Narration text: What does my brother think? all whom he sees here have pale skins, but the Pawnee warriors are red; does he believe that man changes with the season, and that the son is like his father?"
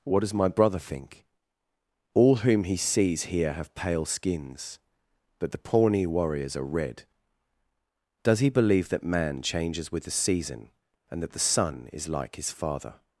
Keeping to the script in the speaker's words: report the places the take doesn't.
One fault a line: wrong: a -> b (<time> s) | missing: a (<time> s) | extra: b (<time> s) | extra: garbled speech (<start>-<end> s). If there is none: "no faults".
no faults